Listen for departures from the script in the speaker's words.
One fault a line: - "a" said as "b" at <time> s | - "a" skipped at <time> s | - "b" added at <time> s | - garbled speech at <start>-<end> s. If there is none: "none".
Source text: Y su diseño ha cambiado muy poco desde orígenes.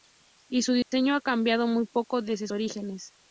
none